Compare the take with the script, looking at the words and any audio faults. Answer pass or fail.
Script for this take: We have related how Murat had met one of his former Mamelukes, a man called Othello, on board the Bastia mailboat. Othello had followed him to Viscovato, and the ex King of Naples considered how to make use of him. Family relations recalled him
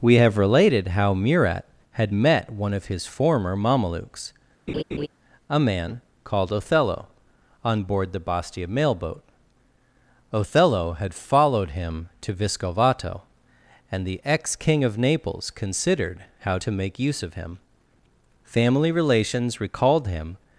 fail